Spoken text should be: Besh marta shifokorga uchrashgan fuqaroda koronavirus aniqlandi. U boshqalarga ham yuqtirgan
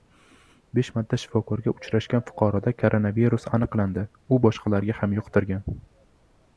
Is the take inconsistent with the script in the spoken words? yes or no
no